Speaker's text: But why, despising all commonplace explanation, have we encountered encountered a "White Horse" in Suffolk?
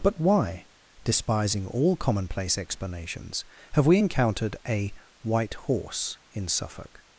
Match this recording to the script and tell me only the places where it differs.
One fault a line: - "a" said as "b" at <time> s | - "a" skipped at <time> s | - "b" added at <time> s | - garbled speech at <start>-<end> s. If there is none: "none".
- "explanation" said as "explanations" at 2.6 s
- "encountered" skipped at 4.6 s